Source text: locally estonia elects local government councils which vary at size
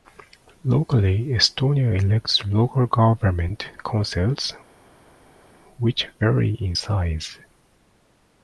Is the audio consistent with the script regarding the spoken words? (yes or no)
no